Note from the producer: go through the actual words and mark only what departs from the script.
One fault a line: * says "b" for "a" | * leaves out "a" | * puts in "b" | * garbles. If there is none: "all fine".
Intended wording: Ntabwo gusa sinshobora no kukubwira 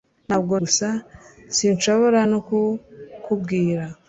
all fine